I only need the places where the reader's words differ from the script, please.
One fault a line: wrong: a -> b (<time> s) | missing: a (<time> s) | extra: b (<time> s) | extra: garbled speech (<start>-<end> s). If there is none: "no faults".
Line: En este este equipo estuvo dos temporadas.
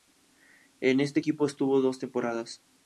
missing: este (1.2 s)